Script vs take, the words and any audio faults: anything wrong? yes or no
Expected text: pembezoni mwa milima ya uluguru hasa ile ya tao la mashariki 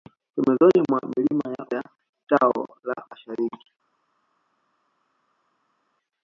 yes